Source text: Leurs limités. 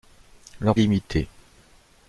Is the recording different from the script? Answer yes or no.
no